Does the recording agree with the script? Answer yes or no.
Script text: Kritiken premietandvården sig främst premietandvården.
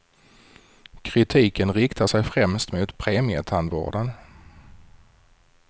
no